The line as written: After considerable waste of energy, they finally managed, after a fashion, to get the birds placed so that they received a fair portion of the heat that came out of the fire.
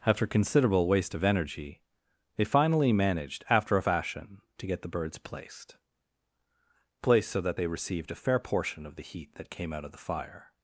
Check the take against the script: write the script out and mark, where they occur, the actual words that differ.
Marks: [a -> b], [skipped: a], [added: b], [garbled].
After considerable waste of energy, they finally managed, after a fashion, to get the birds placed [added: placed] so that they received a fair portion of the heat that came out of the fire.